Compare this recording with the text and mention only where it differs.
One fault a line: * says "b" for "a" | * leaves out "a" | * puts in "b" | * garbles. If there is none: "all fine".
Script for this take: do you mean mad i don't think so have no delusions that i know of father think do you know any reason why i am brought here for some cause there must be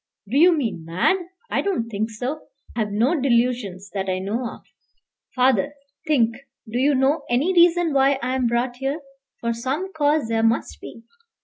all fine